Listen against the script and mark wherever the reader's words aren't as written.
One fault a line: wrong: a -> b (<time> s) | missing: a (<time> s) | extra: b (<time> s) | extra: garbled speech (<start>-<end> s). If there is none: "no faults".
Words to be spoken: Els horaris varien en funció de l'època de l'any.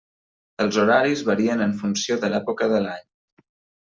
no faults